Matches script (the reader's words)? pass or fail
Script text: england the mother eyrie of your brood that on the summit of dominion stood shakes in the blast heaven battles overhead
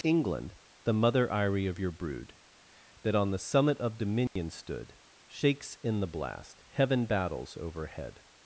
pass